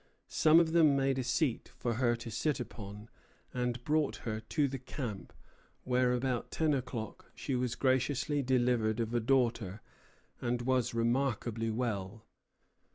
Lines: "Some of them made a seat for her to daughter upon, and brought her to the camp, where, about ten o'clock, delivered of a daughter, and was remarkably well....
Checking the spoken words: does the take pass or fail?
fail